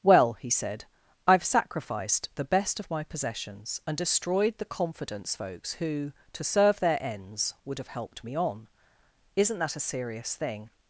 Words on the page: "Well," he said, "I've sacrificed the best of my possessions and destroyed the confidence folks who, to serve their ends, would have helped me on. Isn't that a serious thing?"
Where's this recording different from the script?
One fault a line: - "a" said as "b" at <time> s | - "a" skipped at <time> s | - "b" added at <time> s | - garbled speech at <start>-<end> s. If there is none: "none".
none